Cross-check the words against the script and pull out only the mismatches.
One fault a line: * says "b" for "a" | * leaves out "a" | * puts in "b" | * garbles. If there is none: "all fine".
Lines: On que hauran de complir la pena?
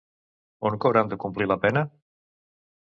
all fine